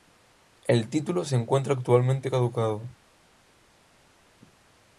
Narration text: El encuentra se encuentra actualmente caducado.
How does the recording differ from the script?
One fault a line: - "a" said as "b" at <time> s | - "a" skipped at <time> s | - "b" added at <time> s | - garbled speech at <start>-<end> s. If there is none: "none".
- "encuentra" said as "título" at 0.9 s